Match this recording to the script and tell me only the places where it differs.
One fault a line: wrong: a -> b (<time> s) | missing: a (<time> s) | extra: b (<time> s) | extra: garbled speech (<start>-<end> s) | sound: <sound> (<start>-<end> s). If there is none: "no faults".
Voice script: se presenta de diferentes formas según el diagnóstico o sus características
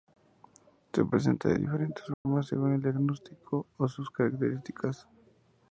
sound: dropout (2.1-2.3 s)